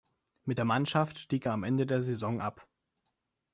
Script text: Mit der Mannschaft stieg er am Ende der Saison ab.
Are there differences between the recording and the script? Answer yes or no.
no